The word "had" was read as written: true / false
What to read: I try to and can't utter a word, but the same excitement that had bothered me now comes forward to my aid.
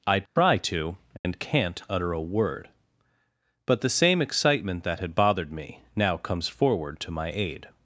true